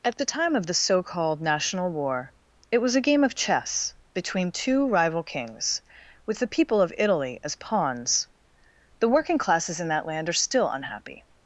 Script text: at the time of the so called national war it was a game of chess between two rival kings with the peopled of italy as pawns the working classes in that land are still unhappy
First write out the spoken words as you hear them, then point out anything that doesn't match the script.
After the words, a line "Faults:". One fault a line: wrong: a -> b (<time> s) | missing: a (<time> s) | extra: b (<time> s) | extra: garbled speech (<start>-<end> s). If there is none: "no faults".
at the time of the so called national war it was a game of chess between two rival kings with the people of italy as pawns the working classes in that land are still unhappy
Faults:
wrong: peopled -> people (6.5 s)